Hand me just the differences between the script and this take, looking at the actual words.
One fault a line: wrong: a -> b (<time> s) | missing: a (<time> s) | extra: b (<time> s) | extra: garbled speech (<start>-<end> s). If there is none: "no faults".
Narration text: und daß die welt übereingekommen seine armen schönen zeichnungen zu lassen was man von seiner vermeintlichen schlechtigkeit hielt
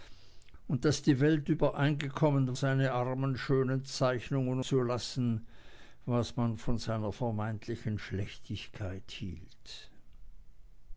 no faults